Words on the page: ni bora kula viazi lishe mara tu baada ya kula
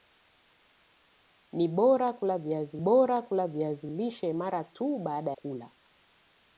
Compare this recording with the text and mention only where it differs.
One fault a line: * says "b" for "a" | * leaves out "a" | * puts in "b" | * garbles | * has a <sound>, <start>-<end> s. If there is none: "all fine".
* puts in "bora kula viazi"
* leaves out "ya"